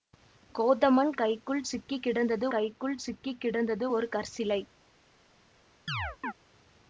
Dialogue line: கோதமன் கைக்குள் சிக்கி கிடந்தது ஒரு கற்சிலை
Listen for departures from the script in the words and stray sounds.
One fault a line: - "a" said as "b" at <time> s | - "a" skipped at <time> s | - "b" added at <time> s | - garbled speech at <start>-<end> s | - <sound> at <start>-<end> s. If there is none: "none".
- "கைக்குள் சிக்கி கிடந்தது" added at 2.5 s
- chirp at 5.9-6.3 s